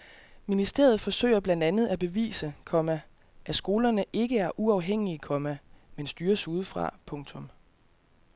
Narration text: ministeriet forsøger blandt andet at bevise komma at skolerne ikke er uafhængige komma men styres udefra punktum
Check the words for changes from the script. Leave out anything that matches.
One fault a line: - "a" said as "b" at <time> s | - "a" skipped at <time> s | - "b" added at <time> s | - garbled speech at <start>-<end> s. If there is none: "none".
none